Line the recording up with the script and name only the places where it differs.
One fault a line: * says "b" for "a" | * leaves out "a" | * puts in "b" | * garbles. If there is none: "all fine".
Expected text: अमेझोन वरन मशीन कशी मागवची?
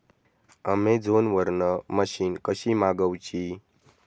all fine